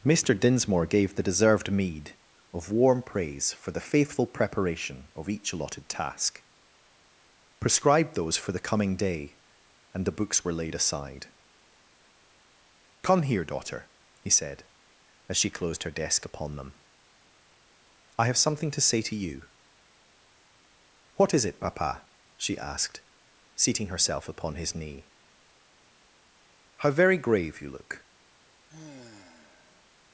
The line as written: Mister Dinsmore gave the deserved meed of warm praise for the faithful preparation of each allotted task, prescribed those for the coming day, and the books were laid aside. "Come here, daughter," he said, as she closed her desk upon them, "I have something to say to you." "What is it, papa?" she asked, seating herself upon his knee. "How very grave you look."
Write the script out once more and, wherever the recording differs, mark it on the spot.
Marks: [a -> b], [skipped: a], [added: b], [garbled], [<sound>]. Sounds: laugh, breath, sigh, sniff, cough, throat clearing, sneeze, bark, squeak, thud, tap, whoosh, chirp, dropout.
Mister Dinsmore gave the deserved meed of warm praise for the faithful preparation of each allotted task, prescribed those for the coming day, and the books were laid aside. "Come here, daughter," he said, as she closed her desk upon them, "I have something to say to you." "What is it, papa?" she asked, seating herself upon his knee. "How very grave you look." [sigh]